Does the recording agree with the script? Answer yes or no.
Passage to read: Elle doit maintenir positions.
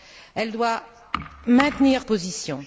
yes